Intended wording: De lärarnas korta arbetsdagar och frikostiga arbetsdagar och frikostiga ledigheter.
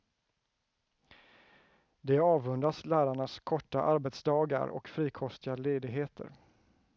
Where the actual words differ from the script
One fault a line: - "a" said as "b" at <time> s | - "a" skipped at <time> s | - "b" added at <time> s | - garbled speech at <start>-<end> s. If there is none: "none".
- "avundas" added at 2.2 s
- "arbetsdagar och frikostiga" skipped at 5.6 s